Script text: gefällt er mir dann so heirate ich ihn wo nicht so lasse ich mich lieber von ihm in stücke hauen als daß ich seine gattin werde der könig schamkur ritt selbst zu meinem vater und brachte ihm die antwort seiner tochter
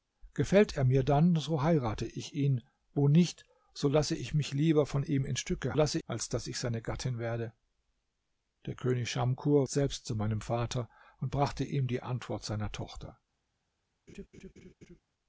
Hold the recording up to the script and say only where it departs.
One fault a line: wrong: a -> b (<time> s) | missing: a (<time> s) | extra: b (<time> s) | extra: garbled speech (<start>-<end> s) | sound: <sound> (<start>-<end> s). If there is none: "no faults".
wrong: hauen -> lasse (5.7 s)
missing: ritt (9.7 s)
sound: laugh (14.1-15.0 s)